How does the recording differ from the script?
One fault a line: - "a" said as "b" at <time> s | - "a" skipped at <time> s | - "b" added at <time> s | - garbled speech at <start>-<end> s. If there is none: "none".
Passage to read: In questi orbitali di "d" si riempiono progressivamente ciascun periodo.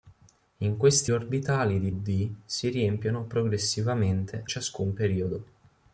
none